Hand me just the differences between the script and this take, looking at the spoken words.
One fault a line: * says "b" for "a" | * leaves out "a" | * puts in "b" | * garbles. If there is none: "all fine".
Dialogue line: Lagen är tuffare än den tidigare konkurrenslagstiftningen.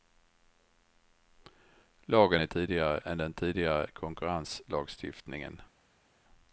* says "tidigare" for "tuffare"